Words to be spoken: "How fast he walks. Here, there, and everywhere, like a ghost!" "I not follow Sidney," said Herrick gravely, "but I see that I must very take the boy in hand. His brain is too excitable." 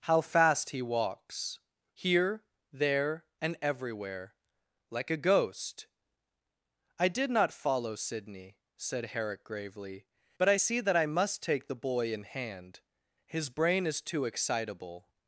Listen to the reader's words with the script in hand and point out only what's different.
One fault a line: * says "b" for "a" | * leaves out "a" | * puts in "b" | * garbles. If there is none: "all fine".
* puts in "did"
* leaves out "very"